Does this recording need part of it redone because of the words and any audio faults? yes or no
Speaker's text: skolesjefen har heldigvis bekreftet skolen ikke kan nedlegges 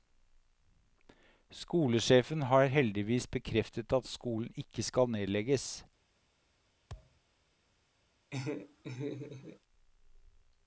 yes